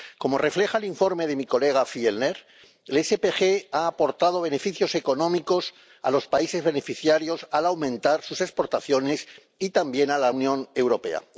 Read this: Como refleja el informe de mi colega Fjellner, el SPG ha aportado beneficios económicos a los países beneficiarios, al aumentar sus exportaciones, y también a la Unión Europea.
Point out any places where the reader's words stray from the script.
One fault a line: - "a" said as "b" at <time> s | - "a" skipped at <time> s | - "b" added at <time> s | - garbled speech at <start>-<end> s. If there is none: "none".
none